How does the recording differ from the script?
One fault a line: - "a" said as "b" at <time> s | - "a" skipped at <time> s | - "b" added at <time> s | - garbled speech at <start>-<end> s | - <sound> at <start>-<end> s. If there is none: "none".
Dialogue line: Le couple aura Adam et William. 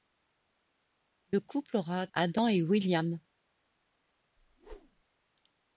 - whoosh at 4.4-5.0 s